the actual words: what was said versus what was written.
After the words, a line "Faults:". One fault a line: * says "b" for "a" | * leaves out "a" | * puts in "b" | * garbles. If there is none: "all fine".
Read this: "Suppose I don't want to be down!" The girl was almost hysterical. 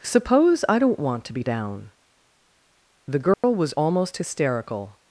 "Suppose I don't want to be down!" The girl was almost hysterical.
Faults:
all fine